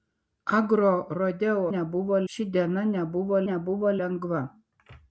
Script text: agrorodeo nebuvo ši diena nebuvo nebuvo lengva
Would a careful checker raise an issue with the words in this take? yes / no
no